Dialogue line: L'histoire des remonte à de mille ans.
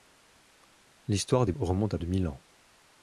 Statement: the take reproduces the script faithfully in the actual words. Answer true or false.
true